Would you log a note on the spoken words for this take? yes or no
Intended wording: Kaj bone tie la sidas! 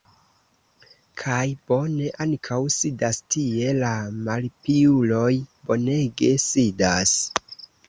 yes